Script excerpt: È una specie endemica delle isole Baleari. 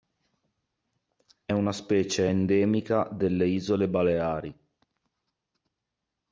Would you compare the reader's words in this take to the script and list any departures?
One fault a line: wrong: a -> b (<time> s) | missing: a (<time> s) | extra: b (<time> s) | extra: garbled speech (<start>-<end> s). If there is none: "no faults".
no faults